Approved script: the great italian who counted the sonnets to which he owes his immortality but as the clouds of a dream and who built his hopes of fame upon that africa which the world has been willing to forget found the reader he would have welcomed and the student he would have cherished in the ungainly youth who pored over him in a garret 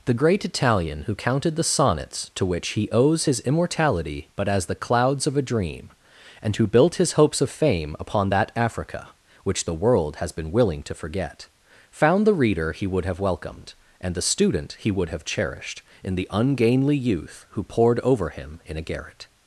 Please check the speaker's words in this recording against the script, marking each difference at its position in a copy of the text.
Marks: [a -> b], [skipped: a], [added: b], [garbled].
the great italian who counted the sonnets to which he owes his immortality but as the clouds of a dream and who built his hopes of fame upon that africa which the world has been willing to forget found the reader he would have welcomed and the student he would have cherished in the ungainly youth who pored over him in a garret